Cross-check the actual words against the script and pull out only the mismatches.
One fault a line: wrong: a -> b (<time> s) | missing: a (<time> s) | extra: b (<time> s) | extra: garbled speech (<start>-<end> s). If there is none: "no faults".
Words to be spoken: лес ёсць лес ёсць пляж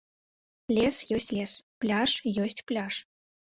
extra: пляж (1.8 s)